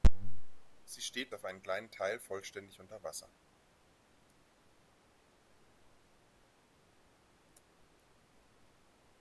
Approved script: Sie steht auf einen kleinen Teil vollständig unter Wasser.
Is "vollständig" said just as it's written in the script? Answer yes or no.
yes